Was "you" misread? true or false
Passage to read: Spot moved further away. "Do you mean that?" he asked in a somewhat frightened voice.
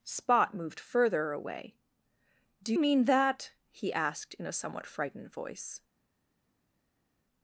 true